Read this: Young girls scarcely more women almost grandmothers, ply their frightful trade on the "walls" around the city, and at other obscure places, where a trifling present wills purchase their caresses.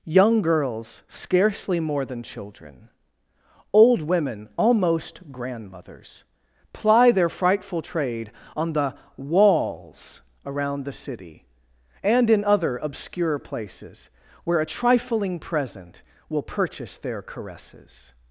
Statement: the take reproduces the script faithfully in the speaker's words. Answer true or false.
false